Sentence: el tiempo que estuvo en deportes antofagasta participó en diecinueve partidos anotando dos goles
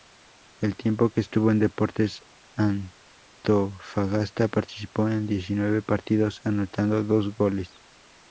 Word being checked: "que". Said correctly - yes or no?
yes